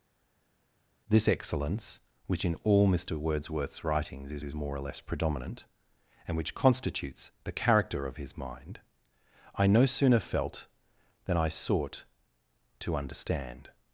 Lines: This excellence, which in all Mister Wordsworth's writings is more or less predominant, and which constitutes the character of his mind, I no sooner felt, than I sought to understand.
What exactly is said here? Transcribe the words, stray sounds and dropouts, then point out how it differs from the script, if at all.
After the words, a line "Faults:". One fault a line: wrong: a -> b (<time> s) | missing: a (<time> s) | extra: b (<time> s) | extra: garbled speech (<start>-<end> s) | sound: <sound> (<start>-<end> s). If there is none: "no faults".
This excellence, which in all Mister Wordsworth's writings is is more or less predominant, and which constitutes the character of his mind, I no sooner felt, than I sought to understand.
Faults:
extra: is (4.4 s)